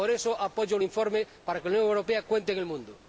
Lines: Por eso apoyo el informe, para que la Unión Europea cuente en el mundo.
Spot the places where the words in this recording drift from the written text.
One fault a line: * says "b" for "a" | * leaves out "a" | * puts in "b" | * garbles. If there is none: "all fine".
all fine